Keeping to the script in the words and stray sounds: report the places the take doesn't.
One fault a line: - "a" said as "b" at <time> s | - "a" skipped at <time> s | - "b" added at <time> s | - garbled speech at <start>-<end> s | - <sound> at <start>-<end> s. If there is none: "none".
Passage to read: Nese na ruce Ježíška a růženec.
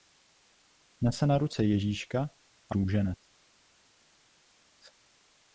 none